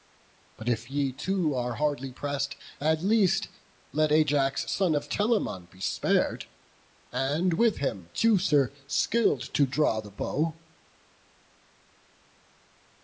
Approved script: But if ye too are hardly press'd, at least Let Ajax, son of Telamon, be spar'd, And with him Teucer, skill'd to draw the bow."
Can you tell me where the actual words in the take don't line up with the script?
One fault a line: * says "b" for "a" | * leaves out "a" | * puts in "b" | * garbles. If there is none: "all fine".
all fine